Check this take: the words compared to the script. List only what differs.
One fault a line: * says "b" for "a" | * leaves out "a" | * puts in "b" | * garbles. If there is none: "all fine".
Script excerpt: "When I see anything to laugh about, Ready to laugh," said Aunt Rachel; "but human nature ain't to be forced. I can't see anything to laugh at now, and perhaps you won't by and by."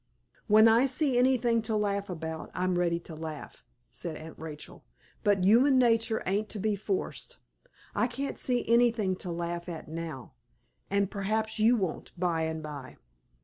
* puts in "I'm"